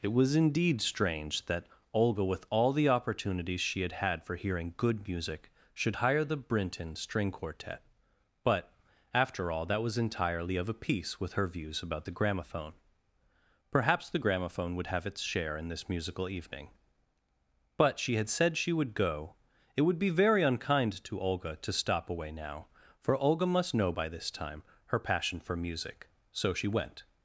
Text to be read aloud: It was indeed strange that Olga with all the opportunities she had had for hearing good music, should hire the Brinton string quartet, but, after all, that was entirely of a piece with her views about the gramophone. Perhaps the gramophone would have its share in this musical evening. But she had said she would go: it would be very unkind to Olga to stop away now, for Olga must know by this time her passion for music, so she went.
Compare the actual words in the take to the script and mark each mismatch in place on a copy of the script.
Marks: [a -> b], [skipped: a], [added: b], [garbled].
It was indeed strange that Olga with all the opportunities she had had for hearing good music, should hire the Brinton string quartet, but, after all, that was entirely of a piece with her views about the gramophone. Perhaps the gramophone would have its share in this musical evening. But she had said she would go: it would be very unkind to Olga to stop away now, for Olga must know by this time her passion for music, so she went.